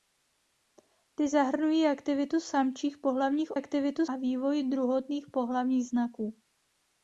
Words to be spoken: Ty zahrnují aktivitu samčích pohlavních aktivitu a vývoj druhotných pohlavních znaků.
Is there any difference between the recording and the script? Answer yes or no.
no